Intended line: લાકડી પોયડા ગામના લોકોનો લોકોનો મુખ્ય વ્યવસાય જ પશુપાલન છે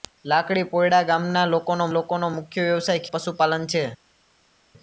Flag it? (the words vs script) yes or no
no